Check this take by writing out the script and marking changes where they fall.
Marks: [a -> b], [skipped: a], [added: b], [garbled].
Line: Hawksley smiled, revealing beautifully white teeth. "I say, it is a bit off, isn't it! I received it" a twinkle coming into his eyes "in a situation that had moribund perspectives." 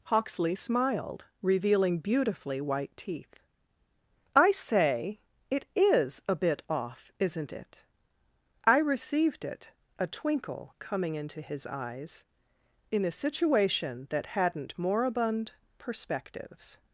Hawksley smiled, revealing beautifully white teeth. "I say, it is a bit off, isn't it! I received it" a twinkle coming into his eyes "in a situation that [had -> hadn't] moribund perspectives."